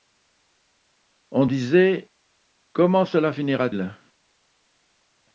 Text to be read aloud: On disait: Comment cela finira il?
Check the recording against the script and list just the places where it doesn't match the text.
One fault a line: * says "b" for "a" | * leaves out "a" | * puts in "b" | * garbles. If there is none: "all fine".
all fine